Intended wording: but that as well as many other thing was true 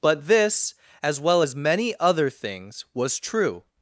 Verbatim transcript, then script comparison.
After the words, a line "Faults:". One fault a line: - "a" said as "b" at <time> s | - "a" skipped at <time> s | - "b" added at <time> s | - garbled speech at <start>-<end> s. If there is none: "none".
but this as well as many other things was true
Faults:
- "that" said as "this" at 0.3 s
- "thing" said as "things" at 2.3 s